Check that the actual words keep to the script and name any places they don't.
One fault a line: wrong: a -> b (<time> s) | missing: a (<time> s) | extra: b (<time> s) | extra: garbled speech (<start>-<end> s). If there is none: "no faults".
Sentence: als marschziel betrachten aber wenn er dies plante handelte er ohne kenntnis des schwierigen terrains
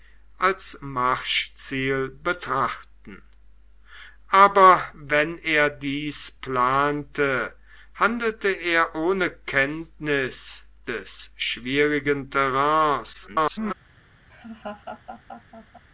extra: garbled speech (13.1-13.7 s)